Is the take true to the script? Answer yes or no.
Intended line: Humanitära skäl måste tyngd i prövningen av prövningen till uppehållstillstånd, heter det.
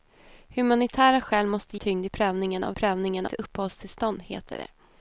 yes